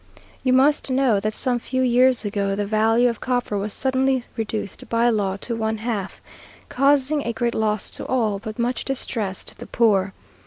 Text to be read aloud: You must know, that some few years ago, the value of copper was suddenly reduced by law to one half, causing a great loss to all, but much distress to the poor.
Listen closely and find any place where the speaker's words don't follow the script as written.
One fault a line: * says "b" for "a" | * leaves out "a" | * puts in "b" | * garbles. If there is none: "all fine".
all fine